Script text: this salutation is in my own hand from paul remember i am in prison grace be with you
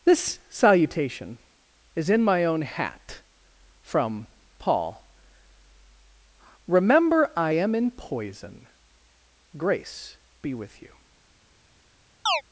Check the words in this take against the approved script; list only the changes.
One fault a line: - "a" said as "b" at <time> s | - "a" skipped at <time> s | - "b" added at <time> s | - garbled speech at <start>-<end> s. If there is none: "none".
- "hand" said as "hat" at 2.6 s
- "prison" said as "poison" at 7.9 s